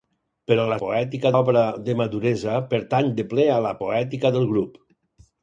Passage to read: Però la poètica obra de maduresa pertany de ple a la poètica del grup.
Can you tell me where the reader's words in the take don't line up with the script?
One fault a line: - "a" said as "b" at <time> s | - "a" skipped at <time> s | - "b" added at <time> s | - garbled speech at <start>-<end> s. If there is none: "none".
none